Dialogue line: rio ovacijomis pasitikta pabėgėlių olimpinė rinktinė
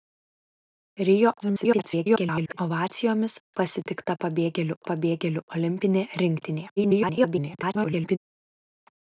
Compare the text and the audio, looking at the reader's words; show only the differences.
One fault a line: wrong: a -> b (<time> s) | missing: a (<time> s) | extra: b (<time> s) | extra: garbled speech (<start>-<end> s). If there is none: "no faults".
extra: garbled speech (1.4-2.6 s)
extra: pabėgėlių (4.9 s)
extra: garbled speech (6.8-8.2 s)